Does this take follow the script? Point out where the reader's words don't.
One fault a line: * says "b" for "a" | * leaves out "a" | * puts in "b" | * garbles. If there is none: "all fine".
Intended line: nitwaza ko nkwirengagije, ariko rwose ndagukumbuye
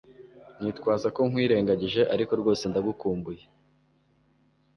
all fine